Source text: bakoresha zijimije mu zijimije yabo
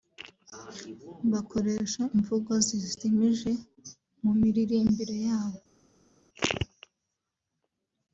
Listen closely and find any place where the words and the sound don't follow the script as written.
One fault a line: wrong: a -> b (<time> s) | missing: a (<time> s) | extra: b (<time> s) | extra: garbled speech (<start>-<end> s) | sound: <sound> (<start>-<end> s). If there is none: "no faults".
extra: imvugo (2.1 s)
wrong: zijimije -> miririmbire (4.4 s)